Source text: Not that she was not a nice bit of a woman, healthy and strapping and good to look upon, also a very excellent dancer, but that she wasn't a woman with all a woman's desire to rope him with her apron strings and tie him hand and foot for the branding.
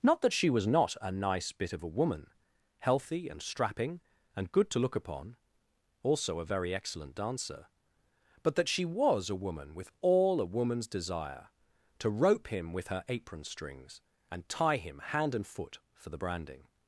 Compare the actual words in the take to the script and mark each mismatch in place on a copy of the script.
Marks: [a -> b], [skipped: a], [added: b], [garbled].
Not that she was not a nice bit of a woman, healthy and strapping and good to look upon, also a very excellent dancer, but that she [wasn't -> was] a woman with all a woman's desire to rope him with her apron strings and tie him hand and foot for the branding.